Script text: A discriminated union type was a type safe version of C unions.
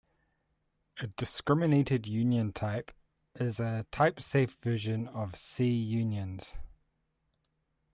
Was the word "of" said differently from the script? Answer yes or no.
no